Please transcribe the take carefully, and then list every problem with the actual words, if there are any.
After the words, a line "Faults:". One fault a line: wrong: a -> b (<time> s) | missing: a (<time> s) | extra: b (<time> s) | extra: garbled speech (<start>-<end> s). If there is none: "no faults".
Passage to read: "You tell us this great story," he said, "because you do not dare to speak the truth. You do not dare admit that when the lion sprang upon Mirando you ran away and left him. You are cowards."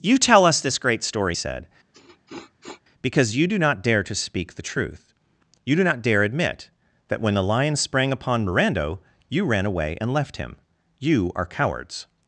"You tell us this great story," said, "because you do not dare to speak the truth. You do not dare admit that when the lion sprang upon Mirando you ran away and left him. You are cowards."
Faults:
missing: he (1.4 s)